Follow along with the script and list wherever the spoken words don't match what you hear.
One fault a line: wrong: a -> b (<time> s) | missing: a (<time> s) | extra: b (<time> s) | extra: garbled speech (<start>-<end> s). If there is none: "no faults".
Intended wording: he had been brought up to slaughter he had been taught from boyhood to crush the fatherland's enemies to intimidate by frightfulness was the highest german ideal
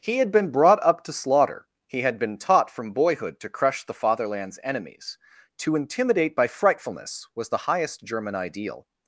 no faults